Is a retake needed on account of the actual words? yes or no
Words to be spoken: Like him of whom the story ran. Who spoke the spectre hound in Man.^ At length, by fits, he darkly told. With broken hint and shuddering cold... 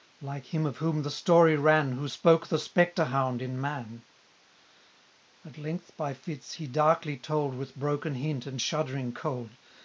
no